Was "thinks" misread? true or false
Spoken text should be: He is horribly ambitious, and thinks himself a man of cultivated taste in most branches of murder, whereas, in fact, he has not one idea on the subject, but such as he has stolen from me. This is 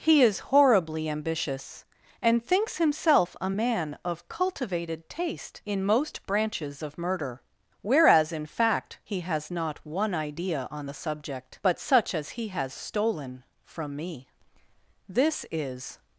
false